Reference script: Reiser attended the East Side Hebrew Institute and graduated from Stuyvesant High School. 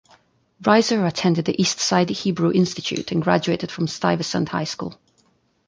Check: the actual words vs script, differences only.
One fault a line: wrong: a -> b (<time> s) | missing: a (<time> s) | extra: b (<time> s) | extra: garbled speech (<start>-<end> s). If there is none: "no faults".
no faults